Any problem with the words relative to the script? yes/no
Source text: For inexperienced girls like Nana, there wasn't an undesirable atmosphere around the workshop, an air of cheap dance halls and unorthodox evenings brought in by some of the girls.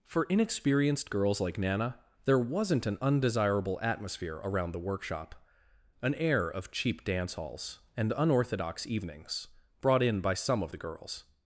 no